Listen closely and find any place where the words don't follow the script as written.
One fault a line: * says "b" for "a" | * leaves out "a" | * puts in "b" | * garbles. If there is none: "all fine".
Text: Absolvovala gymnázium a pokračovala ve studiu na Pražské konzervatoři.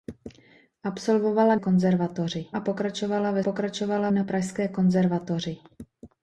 * says "konzervatoři" for "gymnázium"
* says "pokračovala" for "studiu"